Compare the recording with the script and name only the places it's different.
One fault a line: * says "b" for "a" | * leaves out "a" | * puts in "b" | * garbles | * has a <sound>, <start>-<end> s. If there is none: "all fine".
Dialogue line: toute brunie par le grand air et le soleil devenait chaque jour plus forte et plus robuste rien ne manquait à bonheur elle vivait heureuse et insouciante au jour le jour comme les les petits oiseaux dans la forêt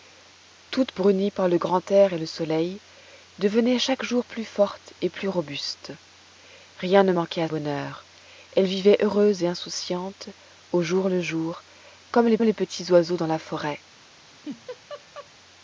* has a laugh, 14.2-15.3 s